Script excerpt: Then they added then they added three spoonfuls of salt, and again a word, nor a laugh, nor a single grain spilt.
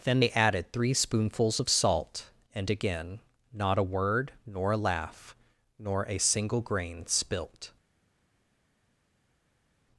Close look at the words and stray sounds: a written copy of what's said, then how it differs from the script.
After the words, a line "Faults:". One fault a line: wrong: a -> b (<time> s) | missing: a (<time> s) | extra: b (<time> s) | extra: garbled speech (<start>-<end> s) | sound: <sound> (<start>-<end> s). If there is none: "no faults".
Then they added three spoonfuls of salt, and again not a word, nor a laugh, nor a single grain spilt.
Faults:
missing: then they added (0.7 s)
extra: not (3.5 s)